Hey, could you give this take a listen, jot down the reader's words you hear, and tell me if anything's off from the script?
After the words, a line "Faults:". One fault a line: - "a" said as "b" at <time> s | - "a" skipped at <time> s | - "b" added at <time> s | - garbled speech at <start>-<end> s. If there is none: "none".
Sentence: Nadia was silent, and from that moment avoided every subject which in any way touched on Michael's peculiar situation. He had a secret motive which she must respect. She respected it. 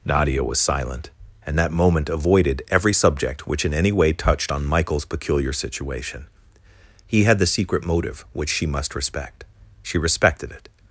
Nadia was silent, and that moment avoided every subject which in any way touched on Michael's peculiar situation. He had the secret motive which she must respect. She respected it.
Faults:
- "from" skipped at 1.6 s
- "a" said as "the" at 7.4 s